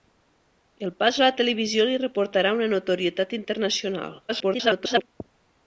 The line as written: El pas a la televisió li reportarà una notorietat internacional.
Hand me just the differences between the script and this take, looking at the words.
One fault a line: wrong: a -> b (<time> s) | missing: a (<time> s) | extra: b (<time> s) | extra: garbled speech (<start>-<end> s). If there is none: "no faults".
extra: garbled speech (4.3-5.1 s)